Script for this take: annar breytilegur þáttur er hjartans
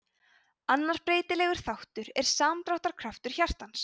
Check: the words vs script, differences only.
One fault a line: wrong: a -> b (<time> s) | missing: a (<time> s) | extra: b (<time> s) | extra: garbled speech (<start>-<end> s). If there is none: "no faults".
extra: samdráttarkraftur (2.3 s)